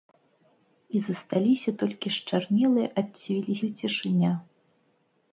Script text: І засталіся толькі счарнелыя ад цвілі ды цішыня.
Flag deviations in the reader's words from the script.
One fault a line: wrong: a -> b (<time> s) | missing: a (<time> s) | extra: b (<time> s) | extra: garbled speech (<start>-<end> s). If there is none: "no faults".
no faults